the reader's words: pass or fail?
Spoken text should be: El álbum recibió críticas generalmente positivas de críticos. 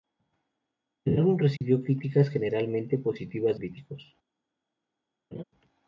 fail